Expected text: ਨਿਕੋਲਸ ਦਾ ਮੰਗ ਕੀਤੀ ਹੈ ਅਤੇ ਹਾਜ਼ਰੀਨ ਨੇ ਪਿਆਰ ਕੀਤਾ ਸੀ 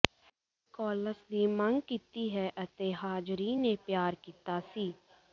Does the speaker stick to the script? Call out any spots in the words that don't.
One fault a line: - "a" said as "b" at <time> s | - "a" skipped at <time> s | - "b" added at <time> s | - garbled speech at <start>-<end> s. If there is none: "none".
- "ਦਾ" said as "ਦੀ" at 1.3 s